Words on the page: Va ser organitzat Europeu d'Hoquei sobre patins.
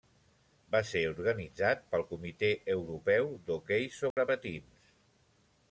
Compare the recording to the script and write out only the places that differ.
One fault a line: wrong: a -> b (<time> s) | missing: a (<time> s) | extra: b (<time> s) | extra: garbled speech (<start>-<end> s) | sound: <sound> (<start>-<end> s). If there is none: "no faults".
extra: pel Comitè (1.9 s)
sound: dropout (4.1-4.2 s)